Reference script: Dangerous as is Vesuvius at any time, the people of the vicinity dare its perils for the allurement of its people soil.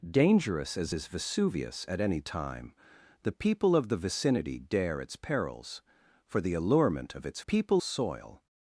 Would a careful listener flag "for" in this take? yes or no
no